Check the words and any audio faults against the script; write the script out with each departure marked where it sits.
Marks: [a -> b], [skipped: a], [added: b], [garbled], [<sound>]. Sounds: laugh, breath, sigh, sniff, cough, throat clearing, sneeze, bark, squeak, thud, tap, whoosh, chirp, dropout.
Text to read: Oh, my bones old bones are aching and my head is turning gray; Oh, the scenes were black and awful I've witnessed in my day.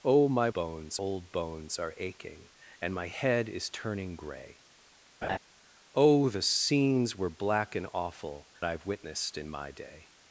Oh, my bones old bones are aching and my head is turning gray; [laugh] Oh, the scenes were black and awful I've witnessed in my day.